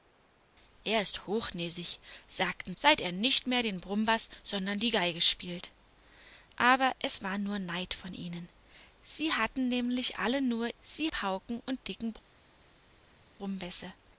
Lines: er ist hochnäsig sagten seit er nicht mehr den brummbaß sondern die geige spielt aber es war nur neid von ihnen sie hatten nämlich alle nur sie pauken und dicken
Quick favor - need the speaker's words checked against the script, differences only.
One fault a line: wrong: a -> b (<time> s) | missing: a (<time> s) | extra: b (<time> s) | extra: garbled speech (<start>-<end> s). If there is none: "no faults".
no faults